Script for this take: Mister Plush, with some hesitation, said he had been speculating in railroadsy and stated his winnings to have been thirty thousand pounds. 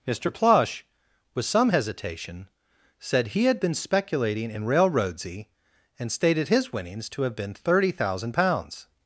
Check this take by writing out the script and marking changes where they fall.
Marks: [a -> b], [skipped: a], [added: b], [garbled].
Mister Plush, with some hesitation, said he had been speculating in railroadsy and stated his winnings to have been thirty thousand pounds.